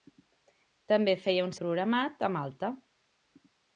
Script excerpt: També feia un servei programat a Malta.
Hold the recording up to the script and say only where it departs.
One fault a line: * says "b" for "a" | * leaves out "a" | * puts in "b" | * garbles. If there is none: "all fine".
* leaves out "servei"